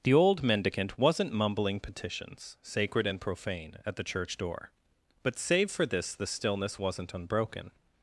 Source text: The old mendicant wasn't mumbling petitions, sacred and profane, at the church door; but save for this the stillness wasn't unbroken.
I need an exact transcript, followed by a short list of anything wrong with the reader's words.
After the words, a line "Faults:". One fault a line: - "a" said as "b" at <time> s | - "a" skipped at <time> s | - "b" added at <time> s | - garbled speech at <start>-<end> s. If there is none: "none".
The old mendicant wasn't mumbling petitions, sacred and profane, at the church door; but save for this the stillness wasn't unbroken.
Faults:
none